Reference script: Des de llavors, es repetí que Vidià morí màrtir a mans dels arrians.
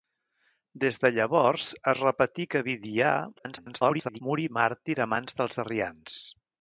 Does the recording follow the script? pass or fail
fail